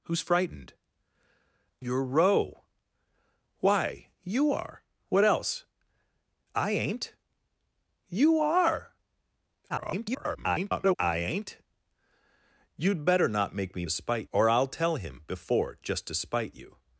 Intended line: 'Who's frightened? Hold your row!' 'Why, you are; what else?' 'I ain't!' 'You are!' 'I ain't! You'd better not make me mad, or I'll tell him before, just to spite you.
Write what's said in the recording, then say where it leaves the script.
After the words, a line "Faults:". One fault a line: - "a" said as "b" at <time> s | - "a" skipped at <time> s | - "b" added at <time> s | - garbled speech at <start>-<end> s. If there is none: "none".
'Who's frightened? Your row!' 'Why, you are; what else?' 'I ain't!' 'You are!' [garbled] 'I ain't! You'd better not make me spite, or I'll tell him before, just to spite you.
Faults:
- "Hold" skipped at 0.7 s
- garbled speech at 9.7-11.0 s
- "mad" said as "spite" at 13.9 s